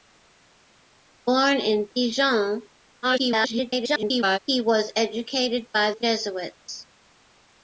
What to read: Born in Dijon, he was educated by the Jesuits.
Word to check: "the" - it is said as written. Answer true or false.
false